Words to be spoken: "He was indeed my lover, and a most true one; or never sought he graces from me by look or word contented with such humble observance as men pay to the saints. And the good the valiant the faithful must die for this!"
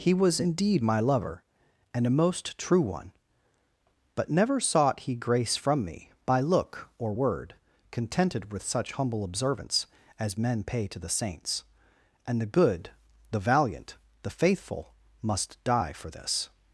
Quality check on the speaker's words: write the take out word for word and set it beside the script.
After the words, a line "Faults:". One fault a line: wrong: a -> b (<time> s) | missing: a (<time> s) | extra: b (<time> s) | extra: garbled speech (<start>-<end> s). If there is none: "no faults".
"He was indeed my lover, and a most true one; but never sought he grace from me by look or word contented with such humble observance as men pay to the saints. And the good the valiant the faithful must die for this!"
Faults:
wrong: or -> but (4.1 s)
wrong: graces -> grace (5.1 s)